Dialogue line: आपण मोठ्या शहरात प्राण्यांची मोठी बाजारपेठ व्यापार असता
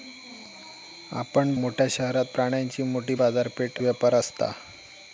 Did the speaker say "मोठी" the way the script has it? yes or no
yes